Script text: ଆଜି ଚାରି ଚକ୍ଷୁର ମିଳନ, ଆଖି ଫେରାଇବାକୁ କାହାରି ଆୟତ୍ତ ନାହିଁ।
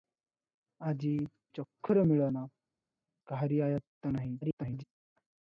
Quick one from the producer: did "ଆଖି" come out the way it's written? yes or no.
no